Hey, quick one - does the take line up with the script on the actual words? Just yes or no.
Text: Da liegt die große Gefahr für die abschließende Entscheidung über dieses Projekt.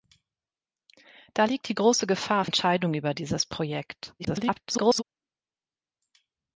no